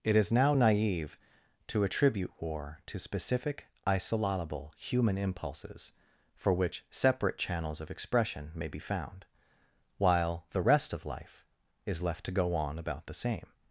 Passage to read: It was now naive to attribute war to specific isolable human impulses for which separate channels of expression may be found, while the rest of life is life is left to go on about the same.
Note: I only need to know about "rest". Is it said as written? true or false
true